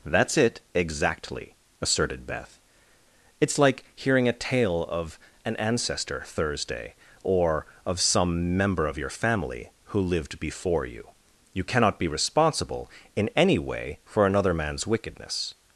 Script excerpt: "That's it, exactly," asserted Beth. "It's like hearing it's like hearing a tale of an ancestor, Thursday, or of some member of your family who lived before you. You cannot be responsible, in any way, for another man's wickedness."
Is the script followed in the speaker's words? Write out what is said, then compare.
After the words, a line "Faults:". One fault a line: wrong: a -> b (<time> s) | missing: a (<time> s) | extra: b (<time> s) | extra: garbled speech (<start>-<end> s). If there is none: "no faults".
"That's it, exactly," asserted Beth. "It's like hearing a tale of an ancestor, Thursday, or of some member of your family who lived before you. You cannot be responsible, in any way, for another man's wickedness."
Faults:
missing: it's like hearing (4.3 s)